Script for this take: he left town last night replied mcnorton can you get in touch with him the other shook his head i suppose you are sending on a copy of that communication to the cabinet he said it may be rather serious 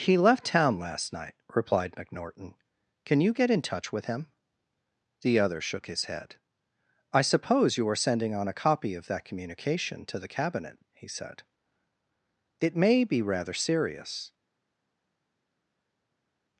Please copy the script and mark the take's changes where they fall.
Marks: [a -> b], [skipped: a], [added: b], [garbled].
he left town last night replied mcnorton can you get in touch with him the other shook his head i suppose you are sending on a copy of that communication to the cabinet he said it may be rather serious